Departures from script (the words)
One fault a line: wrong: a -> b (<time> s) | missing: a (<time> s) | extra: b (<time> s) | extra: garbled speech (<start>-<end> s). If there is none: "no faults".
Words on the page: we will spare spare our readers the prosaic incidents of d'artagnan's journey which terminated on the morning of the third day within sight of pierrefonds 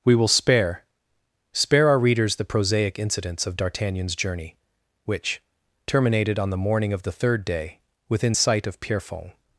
no faults